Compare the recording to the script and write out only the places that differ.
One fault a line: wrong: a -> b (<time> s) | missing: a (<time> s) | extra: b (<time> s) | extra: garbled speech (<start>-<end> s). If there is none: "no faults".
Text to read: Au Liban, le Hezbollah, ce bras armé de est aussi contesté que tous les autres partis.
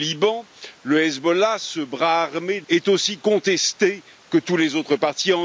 no faults